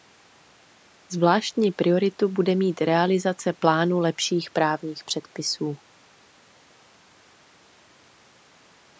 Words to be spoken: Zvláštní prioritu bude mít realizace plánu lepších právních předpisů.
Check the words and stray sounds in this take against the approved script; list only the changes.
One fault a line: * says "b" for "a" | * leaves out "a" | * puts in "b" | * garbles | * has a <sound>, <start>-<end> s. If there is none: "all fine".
all fine